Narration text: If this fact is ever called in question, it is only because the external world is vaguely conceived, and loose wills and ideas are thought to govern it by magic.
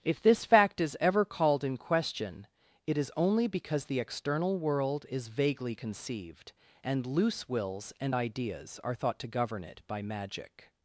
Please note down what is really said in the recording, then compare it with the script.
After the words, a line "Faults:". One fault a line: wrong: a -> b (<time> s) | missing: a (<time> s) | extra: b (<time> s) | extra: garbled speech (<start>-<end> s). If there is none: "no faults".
If this fact is ever called in question, it is only because the external world is vaguely conceived, and loose wills and ideas are thought to govern it by magic.
Faults:
no faults